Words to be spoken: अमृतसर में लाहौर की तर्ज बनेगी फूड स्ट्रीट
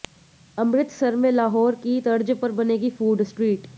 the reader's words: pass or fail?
fail